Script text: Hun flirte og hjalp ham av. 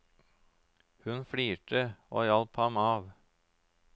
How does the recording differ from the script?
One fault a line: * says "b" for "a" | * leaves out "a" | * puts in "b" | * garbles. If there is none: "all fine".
all fine